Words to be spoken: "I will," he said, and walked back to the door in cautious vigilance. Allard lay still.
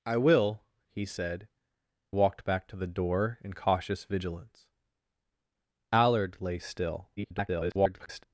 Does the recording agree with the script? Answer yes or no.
no